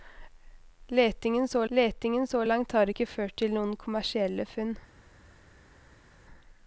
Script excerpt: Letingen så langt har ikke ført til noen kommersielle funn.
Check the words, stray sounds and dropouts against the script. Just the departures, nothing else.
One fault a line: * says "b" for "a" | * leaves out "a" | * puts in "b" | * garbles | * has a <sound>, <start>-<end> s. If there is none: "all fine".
* puts in "letingen så"